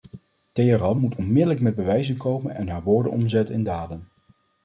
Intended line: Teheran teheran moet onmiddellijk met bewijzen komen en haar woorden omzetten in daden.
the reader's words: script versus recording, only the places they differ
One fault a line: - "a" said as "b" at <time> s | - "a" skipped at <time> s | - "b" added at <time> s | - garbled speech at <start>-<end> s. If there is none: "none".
- "teheran" skipped at 1.0 s